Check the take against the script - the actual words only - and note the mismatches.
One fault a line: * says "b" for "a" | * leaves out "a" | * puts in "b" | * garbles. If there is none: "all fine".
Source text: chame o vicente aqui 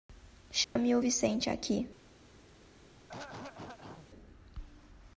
all fine